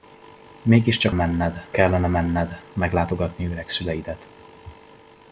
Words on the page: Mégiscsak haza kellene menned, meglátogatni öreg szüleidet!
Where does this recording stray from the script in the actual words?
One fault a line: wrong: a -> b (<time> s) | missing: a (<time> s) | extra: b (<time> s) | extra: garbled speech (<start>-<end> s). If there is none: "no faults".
wrong: haza -> menned (1.1 s)